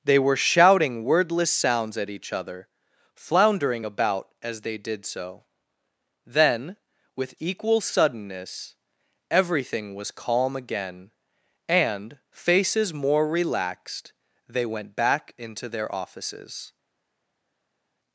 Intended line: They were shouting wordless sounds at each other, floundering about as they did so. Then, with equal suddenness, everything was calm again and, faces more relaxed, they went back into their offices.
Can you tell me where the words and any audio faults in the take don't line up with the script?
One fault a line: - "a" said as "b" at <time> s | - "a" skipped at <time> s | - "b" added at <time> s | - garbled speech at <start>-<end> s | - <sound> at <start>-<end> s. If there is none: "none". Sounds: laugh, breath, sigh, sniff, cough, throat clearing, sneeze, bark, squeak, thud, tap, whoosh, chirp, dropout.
none